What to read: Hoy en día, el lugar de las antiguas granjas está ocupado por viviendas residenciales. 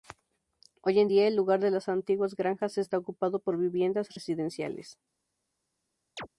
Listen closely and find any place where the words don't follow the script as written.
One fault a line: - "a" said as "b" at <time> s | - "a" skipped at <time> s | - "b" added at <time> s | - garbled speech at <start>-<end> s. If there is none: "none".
none